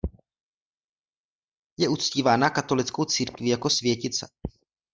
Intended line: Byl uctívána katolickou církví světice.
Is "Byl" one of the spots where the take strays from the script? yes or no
yes